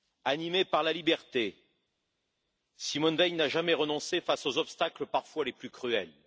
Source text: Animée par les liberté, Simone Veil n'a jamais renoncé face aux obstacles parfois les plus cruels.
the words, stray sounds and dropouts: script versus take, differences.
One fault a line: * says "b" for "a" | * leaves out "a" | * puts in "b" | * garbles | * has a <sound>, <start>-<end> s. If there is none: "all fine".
* says "la" for "les"